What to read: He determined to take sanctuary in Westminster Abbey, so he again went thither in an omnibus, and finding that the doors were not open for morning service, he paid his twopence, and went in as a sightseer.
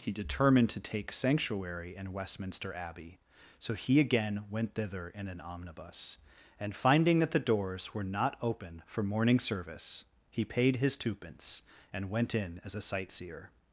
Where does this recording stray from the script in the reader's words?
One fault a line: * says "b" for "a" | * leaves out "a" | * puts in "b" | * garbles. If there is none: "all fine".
all fine